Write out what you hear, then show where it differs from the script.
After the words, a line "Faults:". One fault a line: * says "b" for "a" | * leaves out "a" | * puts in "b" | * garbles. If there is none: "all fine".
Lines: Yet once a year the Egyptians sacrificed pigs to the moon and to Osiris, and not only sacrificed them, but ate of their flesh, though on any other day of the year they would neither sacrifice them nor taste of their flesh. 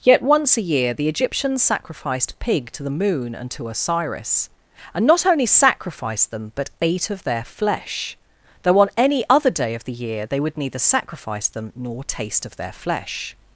Yet once a year the Egyptians sacrificed pig to the moon and to Osiris, and not only sacrificed them, but ate of their flesh, though on any other day of the year they would neither sacrifice them nor taste of their flesh.
Faults:
* says "pig" for "pigs"